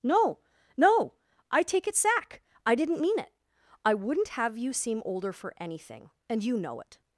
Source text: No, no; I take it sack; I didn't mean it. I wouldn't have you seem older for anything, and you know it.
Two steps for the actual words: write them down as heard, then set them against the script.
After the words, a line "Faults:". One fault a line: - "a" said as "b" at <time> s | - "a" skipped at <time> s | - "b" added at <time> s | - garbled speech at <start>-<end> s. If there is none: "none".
No, no; I take it sack; I didn't mean it. I wouldn't have you seem older for anything, and you know it.
Faults:
none